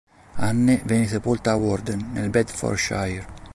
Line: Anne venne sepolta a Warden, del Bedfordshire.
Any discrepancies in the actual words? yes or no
yes